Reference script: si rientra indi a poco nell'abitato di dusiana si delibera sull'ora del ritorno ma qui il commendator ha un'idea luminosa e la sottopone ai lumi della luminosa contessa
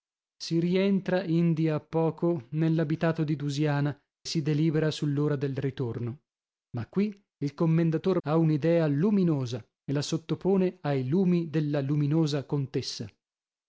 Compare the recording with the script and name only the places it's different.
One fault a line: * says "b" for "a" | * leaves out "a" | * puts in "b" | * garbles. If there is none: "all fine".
all fine